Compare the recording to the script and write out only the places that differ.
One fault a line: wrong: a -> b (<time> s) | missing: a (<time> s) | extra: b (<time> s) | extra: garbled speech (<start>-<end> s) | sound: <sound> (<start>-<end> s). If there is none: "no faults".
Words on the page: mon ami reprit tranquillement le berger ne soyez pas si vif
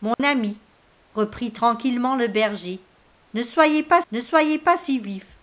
sound: dropout (0.1-0.2 s)
extra: ne soyez pas (4.1 s)